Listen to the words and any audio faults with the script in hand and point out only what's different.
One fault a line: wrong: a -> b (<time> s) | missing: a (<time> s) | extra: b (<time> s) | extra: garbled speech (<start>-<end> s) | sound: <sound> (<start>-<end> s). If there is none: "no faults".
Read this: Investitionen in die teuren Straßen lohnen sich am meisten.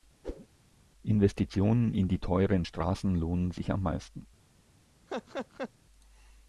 sound: whoosh (0.2-0.5 s)
sound: laugh (5.1-5.7 s)